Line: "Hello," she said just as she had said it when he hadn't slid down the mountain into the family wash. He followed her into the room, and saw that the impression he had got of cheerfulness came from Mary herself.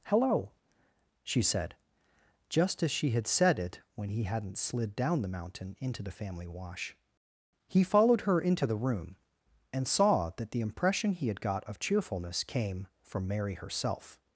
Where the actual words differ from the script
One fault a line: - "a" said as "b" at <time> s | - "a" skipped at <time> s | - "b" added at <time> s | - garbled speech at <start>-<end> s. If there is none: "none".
none